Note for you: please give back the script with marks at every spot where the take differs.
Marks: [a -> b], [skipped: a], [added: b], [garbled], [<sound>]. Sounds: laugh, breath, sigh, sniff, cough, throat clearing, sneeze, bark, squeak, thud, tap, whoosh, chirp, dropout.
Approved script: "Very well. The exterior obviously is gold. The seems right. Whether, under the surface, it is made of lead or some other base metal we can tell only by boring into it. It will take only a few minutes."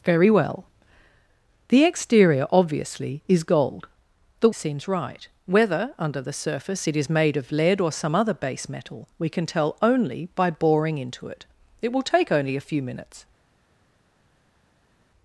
"Very well. The exterior obviously is gold. The seems right. Whether, under the surface, it is made of lead or some other base metal we can tell only by boring into it. It will take only a few minutes."